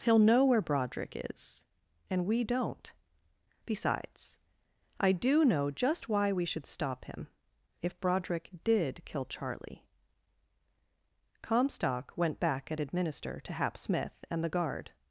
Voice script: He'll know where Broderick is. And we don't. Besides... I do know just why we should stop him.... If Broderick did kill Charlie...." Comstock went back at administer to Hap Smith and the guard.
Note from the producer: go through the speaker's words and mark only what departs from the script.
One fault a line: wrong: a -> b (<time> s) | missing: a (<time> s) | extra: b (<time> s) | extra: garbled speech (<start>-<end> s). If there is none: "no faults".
no faults